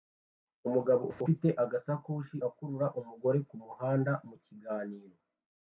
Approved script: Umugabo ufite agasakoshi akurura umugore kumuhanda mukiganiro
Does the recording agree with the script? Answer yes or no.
yes